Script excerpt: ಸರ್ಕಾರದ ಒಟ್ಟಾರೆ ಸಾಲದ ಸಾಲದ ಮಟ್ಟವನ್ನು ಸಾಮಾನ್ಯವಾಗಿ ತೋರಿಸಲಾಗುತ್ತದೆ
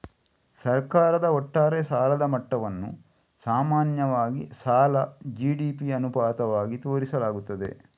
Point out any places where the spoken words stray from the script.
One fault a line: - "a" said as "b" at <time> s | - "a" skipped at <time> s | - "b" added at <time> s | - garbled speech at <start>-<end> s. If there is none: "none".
- "ಸಾಲದ" skipped at 2.2 s
- "ಸಾಲ ಜಿ.ಡಿ.ಪಿ ಅನುಪಾತವಾಗಿ" added at 4.6 s